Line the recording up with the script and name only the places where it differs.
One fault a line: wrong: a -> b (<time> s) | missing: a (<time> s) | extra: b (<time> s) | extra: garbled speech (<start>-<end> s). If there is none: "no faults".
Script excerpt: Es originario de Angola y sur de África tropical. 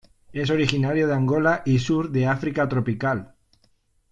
no faults